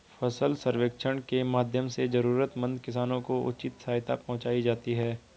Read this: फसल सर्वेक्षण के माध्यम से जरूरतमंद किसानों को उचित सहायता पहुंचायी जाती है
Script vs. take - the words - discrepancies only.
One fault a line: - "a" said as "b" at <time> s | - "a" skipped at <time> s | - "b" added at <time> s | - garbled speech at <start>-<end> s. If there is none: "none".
none